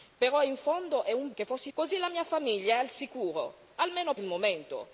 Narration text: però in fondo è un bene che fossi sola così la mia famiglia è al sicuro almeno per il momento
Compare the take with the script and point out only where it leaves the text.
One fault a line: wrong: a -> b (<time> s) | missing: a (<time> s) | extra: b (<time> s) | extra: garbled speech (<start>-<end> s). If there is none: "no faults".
missing: bene (1.3 s)
missing: sola (1.7 s)
missing: per (4.1 s)